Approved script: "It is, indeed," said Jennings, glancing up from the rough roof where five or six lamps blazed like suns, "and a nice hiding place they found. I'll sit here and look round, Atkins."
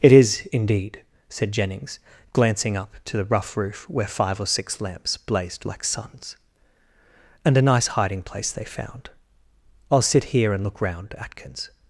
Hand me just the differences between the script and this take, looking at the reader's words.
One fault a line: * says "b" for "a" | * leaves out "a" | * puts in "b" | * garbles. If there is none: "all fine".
* says "to" for "from"